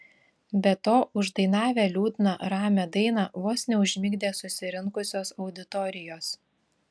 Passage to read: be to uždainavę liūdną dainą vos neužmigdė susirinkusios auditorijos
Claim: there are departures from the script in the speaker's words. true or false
true